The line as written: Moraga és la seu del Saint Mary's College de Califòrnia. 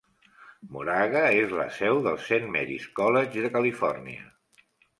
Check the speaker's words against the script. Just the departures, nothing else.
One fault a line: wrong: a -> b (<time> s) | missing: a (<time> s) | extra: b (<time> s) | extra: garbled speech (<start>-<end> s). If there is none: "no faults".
no faults